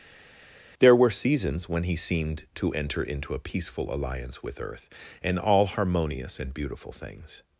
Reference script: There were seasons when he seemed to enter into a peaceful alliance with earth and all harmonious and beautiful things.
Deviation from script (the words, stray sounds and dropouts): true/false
false